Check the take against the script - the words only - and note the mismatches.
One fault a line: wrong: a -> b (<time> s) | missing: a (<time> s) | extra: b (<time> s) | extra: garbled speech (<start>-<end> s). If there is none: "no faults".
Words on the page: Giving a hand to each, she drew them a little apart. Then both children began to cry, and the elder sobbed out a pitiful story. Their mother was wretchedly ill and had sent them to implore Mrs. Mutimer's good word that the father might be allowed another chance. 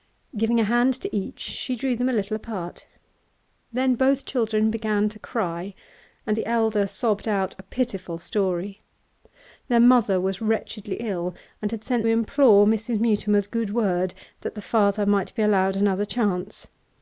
missing: them to (12.1 s)